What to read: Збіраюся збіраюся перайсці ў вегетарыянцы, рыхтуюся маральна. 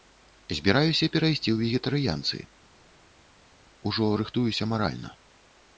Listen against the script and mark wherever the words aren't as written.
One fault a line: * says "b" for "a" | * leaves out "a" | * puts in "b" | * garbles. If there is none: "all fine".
* leaves out "збіраюся"
* puts in "ужо"